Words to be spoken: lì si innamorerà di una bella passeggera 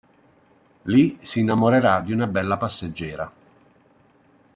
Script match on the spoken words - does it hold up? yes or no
yes